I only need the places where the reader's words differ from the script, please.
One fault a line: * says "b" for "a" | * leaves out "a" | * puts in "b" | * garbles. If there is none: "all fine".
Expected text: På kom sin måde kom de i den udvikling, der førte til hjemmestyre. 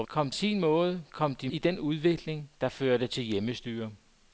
all fine